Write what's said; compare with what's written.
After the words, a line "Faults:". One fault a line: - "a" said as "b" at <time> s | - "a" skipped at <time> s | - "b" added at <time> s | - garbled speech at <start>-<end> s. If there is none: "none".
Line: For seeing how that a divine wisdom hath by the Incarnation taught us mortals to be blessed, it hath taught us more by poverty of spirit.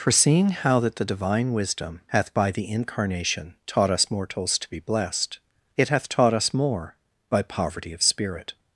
For seeing how that the divine wisdom hath by the Incarnation taught us mortals to be blessed, it hath taught us more by poverty of spirit.
Faults:
- "a" said as "the" at 0.9 s